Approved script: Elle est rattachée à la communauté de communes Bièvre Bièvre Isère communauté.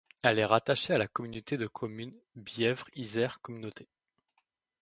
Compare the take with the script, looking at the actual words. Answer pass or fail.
fail